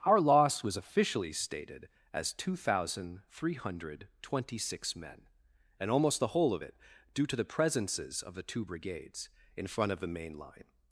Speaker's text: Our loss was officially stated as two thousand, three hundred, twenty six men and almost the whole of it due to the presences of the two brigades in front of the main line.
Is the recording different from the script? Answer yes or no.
no